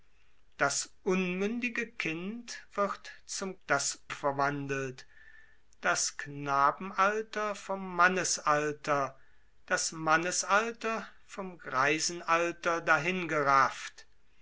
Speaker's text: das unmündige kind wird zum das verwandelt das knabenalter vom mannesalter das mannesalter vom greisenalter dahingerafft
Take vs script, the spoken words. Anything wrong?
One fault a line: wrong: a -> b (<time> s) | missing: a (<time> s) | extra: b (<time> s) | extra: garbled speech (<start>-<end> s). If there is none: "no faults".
no faults